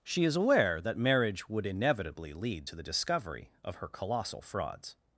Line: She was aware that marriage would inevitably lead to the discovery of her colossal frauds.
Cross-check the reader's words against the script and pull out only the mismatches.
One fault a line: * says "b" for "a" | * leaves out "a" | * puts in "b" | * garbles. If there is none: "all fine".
* says "is" for "was"